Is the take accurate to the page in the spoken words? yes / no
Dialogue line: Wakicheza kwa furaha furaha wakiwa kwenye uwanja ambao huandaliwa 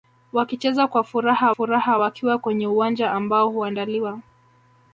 yes